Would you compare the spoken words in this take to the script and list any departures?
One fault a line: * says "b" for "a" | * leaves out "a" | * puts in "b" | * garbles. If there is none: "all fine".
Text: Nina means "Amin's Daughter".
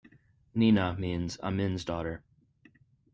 all fine